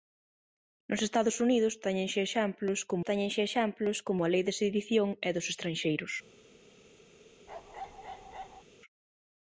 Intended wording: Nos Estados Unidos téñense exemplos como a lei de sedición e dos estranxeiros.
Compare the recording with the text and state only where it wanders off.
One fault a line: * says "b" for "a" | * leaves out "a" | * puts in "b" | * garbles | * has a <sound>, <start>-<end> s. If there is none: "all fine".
* puts in "téñense exemplos como"
* has a bark, 7.5-8.6 s